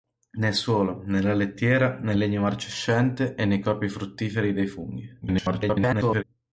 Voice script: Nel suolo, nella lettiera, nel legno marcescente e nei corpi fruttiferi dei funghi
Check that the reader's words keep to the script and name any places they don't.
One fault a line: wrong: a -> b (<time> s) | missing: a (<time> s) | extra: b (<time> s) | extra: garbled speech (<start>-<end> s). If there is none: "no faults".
extra: garbled speech (5.2-6.2 s)